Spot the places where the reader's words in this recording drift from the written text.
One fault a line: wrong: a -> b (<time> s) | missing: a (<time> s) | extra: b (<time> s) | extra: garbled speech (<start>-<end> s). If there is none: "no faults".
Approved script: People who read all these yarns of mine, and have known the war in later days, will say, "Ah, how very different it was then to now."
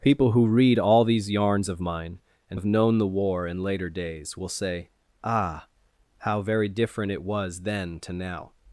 no faults